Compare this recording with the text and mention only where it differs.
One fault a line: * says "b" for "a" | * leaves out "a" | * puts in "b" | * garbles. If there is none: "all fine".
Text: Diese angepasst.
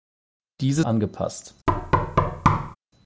all fine